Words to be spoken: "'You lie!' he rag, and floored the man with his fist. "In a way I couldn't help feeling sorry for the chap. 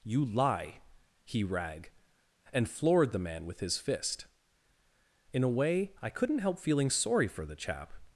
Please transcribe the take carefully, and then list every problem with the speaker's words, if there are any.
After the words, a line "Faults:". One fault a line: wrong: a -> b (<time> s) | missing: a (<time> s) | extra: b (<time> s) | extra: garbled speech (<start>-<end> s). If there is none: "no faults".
"'You lie!' he rag, and floored the man with his fist. "In a way I couldn't help feeling sorry for the chap.
Faults:
no faults